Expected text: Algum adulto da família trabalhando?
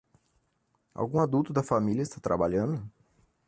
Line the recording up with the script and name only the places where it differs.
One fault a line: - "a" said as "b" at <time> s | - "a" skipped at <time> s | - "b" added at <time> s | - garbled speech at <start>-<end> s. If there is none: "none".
- "está" added at 2.0 s